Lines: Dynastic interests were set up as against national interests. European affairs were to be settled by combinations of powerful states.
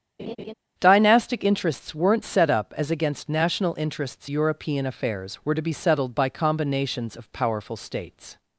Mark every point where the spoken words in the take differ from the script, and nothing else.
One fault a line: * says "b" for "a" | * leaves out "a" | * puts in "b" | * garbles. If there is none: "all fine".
* says "weren't" for "were"